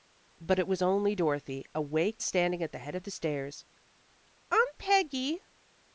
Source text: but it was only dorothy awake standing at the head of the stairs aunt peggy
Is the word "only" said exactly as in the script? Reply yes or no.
yes